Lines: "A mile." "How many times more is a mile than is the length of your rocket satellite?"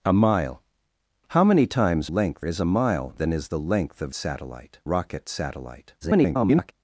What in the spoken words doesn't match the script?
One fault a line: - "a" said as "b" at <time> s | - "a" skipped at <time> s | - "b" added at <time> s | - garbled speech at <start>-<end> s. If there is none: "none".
- "more" said as "length" at 2.1 s
- "your" said as "satellite" at 4.1 s
- garbled speech at 6.0-6.7 s